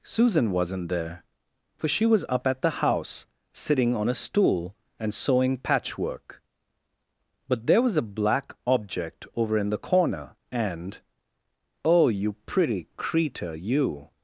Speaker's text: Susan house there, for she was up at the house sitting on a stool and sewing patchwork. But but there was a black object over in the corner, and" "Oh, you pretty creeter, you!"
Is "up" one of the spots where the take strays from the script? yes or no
no